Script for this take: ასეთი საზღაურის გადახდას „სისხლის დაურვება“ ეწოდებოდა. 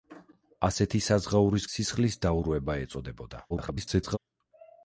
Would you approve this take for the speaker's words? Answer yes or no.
no